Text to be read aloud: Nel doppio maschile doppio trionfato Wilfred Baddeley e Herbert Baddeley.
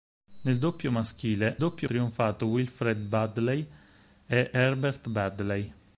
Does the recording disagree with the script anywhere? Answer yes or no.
no